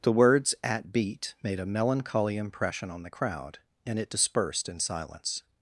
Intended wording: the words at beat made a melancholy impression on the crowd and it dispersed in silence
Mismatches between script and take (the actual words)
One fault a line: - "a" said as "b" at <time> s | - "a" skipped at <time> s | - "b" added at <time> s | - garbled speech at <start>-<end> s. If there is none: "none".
none